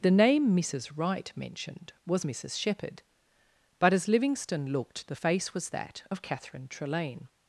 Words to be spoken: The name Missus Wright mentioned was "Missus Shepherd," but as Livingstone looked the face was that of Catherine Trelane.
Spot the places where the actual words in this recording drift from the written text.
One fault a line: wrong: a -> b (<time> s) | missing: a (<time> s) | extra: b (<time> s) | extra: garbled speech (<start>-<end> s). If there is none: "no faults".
no faults